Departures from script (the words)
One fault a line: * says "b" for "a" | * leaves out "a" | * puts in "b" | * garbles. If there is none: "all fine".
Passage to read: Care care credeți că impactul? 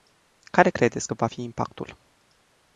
* leaves out "care"
* puts in "va fi"